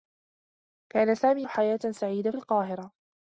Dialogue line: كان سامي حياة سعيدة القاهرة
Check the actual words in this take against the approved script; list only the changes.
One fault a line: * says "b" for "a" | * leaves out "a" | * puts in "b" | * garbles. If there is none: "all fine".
all fine